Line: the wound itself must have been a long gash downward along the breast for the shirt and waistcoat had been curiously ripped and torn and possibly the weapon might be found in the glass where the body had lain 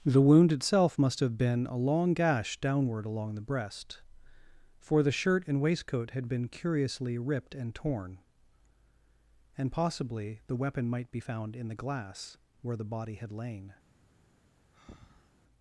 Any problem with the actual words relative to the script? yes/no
no